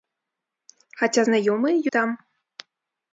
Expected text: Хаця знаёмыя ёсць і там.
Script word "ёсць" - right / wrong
wrong